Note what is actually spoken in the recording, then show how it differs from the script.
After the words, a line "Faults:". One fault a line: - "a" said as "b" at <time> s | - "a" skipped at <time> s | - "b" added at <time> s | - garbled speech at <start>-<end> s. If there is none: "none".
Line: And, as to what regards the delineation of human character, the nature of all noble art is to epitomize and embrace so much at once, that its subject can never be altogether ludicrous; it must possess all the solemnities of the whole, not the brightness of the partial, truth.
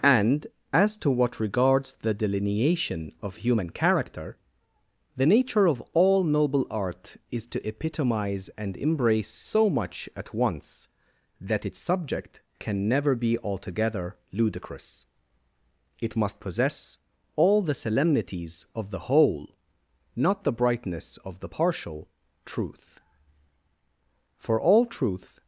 And, as to what regards the delineation of human character, the nature of all noble art is to epitomize and embrace so much at once, that its subject can never be altogether ludicrous; it must possess all the solemnities of the whole, not the brightness of the partial, truth. For all truth
Faults:
- "For all truth" added at 24.4 s